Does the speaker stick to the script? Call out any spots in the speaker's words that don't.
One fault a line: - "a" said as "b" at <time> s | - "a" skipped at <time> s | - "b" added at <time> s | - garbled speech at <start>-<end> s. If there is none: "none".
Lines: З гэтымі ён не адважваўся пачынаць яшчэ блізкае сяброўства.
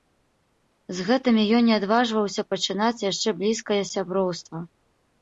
none